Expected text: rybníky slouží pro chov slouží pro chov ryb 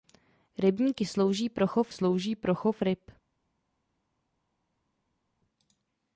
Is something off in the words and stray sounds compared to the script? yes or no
no